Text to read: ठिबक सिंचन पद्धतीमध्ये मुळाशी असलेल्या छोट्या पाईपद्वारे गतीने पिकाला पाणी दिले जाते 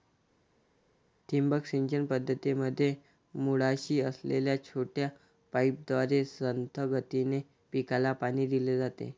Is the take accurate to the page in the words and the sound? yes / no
no